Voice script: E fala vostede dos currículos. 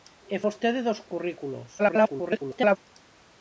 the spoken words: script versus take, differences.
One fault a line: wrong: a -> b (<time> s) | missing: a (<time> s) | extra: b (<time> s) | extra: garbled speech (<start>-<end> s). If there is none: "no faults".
missing: fala (0.4 s)
extra: garbled speech (1.8-2.8 s)